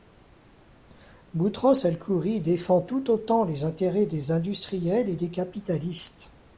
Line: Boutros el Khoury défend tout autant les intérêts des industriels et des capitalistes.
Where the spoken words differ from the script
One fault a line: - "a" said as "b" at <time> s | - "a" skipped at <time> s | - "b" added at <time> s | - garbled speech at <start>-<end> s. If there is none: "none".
none